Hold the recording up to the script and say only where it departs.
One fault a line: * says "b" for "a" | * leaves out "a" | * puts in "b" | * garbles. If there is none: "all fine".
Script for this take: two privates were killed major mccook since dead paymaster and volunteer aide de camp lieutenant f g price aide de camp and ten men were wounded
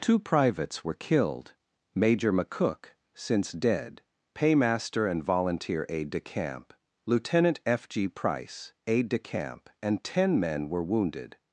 all fine